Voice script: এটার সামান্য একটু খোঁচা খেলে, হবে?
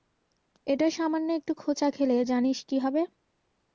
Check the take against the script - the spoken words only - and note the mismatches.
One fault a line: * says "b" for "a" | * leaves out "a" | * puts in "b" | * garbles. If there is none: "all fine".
* puts in "জানিস কী"